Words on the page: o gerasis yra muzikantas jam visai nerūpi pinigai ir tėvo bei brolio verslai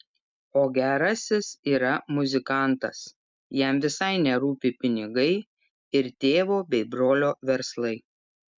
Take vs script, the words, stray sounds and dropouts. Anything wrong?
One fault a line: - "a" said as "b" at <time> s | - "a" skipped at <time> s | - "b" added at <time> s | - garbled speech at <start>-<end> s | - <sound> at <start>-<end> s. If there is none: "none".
none